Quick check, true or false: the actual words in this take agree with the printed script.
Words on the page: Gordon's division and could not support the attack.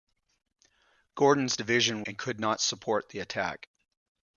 true